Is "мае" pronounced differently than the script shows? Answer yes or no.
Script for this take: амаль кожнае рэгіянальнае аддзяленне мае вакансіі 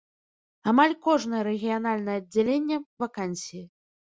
yes